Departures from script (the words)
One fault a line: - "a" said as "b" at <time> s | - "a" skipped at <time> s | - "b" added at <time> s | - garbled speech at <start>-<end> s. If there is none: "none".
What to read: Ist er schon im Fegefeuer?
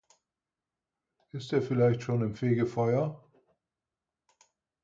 - "vielleicht" added at 1.6 s